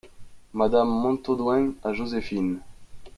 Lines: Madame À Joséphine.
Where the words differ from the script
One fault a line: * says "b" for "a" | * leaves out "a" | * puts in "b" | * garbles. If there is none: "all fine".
* puts in "Montaudoin"